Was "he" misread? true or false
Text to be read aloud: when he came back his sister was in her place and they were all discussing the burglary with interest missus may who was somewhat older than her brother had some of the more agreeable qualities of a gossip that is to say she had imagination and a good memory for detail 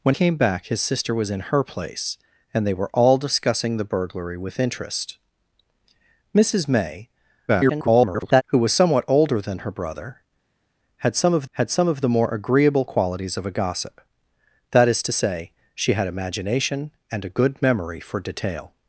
true